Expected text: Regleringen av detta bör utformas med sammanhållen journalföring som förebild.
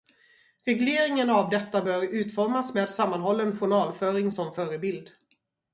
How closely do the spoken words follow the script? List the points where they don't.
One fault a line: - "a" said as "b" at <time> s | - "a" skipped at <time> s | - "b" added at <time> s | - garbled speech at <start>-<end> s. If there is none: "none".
none